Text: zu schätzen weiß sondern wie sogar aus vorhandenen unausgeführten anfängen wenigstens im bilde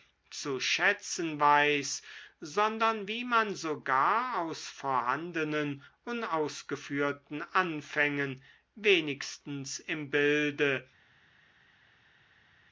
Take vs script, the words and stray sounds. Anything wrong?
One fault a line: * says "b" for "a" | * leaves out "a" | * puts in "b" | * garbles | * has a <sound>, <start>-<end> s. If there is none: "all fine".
* puts in "man"